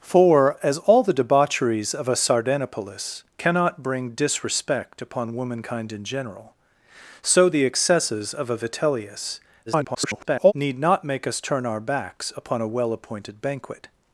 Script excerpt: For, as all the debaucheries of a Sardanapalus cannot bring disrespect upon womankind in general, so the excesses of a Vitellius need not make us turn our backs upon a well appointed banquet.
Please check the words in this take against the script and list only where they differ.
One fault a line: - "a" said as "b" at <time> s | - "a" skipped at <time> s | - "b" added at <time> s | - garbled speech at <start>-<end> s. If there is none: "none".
- garbled speech at 9.7-10.5 s